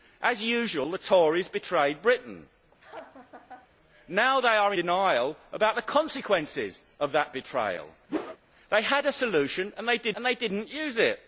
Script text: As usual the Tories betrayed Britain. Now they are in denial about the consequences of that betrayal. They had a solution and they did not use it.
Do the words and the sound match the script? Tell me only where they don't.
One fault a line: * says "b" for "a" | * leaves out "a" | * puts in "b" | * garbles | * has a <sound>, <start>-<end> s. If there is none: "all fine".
* has a laugh, 2.8-3.7 s
* leaves out "in"
* has a whoosh, 8.1-8.4 s
* puts in "and they did"